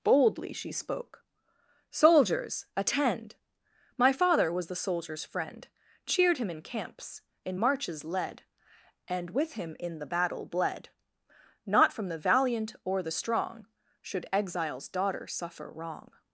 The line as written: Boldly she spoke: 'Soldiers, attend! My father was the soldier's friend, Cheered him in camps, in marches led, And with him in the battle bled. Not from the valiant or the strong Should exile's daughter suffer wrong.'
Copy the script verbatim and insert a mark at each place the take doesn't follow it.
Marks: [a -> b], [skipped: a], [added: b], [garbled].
Boldly she spoke: 'Soldiers, attend! My father was the soldier's friend, Cheered him in camps, in marches led, And with him in the battle bled. Not from the valiant or the strong Should exile's daughter suffer wrong.'